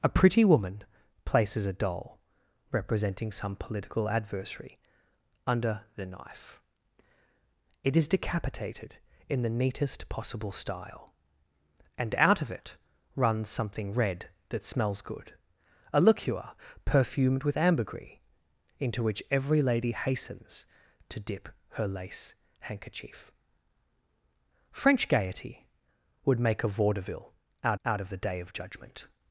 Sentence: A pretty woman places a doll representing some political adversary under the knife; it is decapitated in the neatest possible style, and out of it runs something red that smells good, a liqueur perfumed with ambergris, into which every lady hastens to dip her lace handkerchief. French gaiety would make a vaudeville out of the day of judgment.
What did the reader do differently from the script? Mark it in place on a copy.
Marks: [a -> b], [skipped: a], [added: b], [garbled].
A pretty woman places a doll representing some political adversary under the knife; it is decapitated in the neatest possible style, and out of it runs something red that smells good, a liqueur perfumed with ambergris, into which every lady hastens to dip her lace handkerchief. French gaiety would make a vaudeville out [added: out] of the day of judgment.